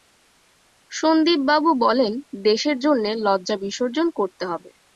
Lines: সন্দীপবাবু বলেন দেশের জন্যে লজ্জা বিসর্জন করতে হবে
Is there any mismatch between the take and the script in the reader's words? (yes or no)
no